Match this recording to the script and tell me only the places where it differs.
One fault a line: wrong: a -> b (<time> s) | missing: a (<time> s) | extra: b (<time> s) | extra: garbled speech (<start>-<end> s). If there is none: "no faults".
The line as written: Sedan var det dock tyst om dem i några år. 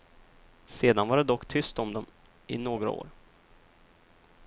no faults